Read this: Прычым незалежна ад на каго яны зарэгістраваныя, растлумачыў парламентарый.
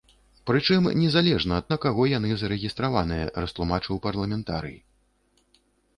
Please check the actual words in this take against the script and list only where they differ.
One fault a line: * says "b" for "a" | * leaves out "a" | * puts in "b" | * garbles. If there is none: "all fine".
all fine